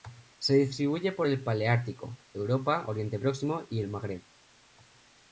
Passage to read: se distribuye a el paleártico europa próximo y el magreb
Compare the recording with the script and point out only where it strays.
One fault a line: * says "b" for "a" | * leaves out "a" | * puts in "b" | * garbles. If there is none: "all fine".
* says "por" for "a"
* puts in "oriente"